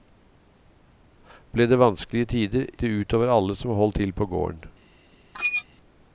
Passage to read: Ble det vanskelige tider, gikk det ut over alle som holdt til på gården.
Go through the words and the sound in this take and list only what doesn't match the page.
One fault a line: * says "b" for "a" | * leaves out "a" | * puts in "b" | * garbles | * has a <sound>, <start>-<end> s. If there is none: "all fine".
* leaves out "gikk"
* has a squeak, 5.3-5.6 s